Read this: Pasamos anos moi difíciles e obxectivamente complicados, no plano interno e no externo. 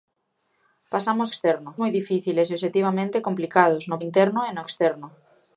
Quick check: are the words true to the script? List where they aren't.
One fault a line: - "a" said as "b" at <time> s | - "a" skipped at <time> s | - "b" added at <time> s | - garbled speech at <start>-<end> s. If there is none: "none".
- "anos" said as "externo" at 1.3 s
- "plano" skipped at 4.0 s